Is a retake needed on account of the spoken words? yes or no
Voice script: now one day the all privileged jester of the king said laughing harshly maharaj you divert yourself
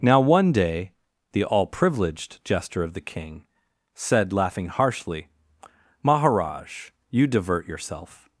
no